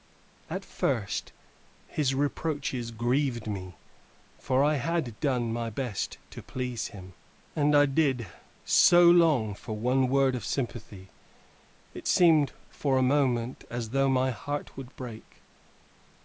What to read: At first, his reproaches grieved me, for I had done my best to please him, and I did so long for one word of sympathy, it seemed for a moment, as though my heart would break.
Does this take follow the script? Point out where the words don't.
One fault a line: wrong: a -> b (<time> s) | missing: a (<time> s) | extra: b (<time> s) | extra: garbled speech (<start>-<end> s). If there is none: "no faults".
no faults